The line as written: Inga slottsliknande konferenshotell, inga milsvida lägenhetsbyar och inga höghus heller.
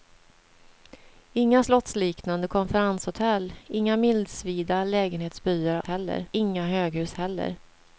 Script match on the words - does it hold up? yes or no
no